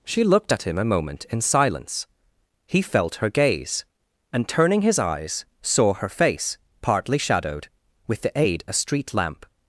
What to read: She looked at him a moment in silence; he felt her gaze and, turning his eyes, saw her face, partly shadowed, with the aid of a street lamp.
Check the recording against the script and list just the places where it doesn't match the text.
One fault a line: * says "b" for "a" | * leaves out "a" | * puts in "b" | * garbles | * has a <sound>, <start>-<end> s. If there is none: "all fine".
* leaves out "of"